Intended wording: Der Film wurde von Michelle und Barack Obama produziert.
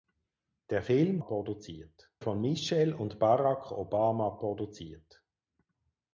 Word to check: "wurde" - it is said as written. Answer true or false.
false